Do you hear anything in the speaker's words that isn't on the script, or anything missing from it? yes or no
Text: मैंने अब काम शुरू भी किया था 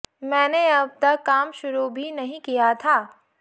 yes